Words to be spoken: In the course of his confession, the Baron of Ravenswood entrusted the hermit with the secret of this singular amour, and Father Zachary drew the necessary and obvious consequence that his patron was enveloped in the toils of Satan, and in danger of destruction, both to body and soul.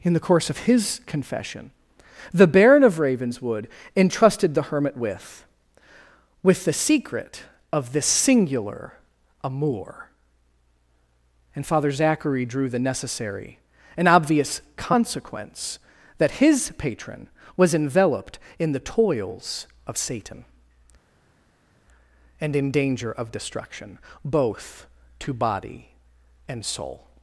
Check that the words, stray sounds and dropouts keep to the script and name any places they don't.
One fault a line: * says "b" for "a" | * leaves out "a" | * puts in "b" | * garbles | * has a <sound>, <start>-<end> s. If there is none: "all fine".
* puts in "with"